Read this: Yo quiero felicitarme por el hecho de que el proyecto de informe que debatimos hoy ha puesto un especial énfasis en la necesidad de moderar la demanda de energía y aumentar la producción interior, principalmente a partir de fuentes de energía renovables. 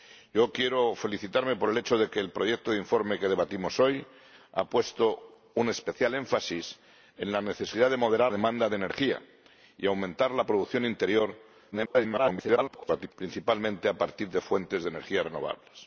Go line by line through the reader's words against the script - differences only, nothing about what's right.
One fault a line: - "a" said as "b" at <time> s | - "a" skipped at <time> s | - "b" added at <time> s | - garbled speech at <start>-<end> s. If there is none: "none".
- "la" skipped at 8.3 s
- garbled speech at 11.7-13.1 s